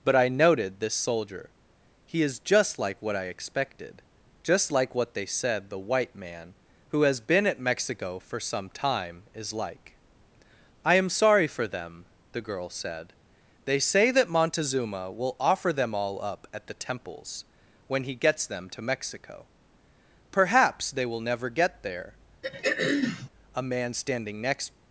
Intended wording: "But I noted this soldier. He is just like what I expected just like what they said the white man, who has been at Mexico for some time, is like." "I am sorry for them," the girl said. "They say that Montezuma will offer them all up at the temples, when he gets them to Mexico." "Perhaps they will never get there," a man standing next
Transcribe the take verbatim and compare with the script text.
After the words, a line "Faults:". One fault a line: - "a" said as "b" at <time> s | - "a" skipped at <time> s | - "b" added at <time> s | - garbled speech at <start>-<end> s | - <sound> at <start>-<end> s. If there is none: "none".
"But I noted this soldier. He is just like what I expected just like what they said the white man, who has been at Mexico for some time, is like." "I am sorry for them," the girl said. "They say that Montezuma will offer them all up at the temples, when he gets them to Mexico." "Perhaps they will never get there," a man standing next
Faults:
- throat clearing at 22.4-23.3 s